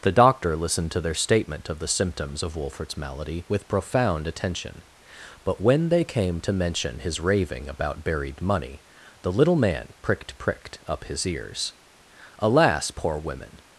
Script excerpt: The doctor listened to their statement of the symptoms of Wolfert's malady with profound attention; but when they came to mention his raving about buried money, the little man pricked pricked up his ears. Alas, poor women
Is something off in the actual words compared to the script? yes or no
no